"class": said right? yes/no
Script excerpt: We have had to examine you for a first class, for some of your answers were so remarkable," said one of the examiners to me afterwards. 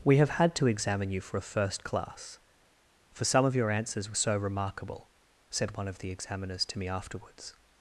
yes